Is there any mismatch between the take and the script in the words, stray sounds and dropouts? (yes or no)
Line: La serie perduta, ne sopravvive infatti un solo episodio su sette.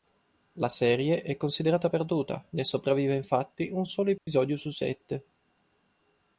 yes